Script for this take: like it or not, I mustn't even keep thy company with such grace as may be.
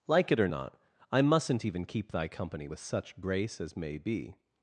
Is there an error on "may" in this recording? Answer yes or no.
no